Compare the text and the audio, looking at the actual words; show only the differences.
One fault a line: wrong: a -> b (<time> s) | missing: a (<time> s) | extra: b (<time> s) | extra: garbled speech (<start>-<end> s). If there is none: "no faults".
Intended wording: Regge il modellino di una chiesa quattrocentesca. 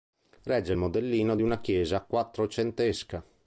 no faults